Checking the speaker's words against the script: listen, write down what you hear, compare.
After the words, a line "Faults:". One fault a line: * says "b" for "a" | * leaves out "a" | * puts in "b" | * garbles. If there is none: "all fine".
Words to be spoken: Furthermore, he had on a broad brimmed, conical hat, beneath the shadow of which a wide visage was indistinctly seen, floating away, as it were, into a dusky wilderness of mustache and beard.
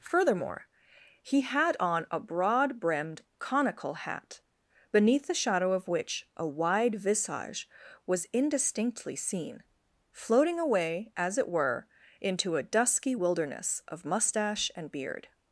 Furthermore, he had on a broad brimmed, conical hat, beneath the shadow of which a wide visage was indistinctly seen, floating away, as it were, into a dusky wilderness of mustache and beard.
Faults:
all fine